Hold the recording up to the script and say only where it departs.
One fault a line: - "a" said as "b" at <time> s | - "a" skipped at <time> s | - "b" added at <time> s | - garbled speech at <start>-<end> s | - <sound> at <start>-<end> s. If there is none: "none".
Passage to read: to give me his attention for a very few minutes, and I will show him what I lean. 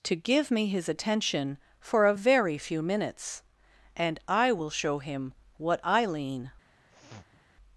- sniff at 6.9-7.4 s